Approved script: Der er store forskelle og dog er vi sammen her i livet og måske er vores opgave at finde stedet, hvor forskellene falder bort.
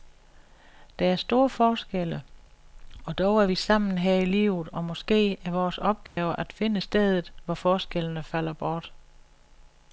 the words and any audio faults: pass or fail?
fail